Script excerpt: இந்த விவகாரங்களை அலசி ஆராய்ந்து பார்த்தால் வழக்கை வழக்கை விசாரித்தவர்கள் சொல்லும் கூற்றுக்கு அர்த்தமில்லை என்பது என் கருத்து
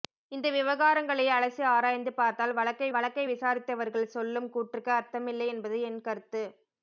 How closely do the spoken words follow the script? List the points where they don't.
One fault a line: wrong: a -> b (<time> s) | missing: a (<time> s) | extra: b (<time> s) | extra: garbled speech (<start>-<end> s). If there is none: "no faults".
no faults